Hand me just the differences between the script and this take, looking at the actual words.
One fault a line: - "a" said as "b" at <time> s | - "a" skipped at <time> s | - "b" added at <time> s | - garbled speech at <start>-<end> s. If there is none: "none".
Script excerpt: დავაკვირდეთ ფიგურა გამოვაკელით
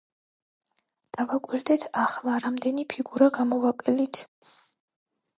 - "ახლა რამდენი" added at 2.0 s